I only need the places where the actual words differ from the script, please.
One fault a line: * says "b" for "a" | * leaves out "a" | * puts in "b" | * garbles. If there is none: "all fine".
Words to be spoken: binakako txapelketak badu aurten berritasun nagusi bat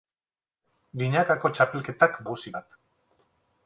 * leaves out "badu aurten berritasun"